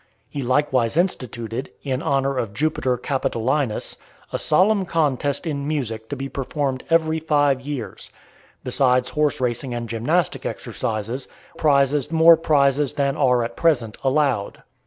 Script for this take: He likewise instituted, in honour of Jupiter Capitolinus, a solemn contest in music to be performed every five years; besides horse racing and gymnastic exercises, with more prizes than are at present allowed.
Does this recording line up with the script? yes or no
no